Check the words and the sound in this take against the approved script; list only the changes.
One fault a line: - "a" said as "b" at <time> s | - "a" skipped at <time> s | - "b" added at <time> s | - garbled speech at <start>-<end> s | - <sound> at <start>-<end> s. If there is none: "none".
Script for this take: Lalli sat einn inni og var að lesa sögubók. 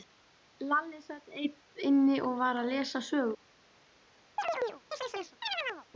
- chirp at 4.4-5.9 s